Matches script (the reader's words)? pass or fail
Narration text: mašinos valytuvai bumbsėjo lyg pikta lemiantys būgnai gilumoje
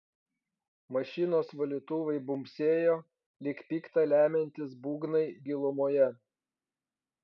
pass